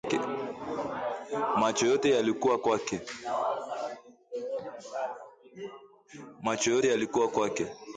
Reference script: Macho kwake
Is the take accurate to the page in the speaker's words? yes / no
no